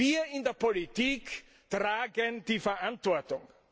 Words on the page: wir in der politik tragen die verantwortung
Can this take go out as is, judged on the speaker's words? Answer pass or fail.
pass